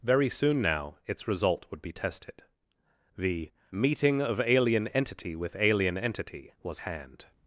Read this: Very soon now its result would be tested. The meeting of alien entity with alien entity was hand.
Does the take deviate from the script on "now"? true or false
false